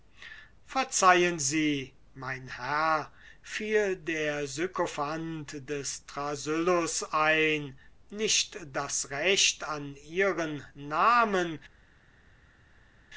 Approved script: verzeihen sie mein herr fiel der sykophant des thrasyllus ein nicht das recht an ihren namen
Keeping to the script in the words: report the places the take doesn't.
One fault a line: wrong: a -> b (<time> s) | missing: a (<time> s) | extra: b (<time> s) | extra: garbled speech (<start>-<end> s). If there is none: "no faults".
no faults